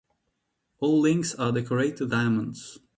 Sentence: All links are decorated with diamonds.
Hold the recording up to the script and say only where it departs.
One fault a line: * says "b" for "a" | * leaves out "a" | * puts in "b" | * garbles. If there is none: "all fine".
* leaves out "with"